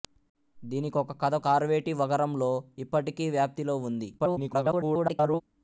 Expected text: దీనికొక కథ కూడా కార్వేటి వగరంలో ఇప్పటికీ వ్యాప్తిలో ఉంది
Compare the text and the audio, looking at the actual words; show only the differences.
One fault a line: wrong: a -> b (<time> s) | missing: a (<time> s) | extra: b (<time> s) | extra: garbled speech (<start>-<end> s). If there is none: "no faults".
missing: కూడా (1.4 s)
extra: garbled speech (4.2-5.4 s)